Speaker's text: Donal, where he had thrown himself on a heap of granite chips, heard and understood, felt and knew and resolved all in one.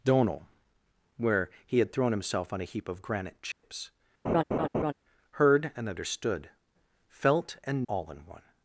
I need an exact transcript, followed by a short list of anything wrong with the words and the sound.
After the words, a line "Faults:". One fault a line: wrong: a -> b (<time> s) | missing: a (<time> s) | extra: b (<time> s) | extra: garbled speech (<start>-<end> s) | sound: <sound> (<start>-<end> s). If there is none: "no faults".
Donal, where he had thrown himself on a heap of granite chips, heard and understood, felt and all in one.
Faults:
sound: dropout (3.5-3.6 s)
sound: laugh (4.2-4.9 s)
missing: knew and resolved (7.9 s)